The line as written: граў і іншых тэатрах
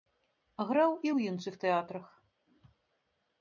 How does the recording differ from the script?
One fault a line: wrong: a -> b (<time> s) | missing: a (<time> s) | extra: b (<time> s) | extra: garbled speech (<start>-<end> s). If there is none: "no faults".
extra: ў (1.1 s)